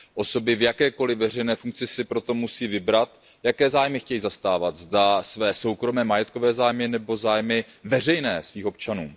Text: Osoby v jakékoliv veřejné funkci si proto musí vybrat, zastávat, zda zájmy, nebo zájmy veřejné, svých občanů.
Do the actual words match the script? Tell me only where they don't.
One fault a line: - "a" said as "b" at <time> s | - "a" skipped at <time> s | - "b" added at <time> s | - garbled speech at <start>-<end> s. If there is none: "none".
- "jaké zájmy chtějí" added at 3.4 s
- "své soukromé majetkové" added at 5.2 s